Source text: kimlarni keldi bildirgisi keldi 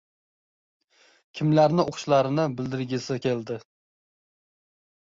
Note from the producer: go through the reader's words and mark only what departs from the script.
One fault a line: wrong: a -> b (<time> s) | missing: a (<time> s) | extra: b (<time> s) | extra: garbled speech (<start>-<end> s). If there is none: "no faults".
wrong: keldi -> o‘qishlarini (1.9 s)